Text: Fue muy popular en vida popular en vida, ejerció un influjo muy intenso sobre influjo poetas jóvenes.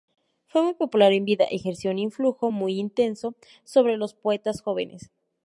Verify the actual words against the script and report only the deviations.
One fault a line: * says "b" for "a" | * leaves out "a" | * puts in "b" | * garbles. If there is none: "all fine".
* leaves out "popular en vida"
* says "los" for "influjo"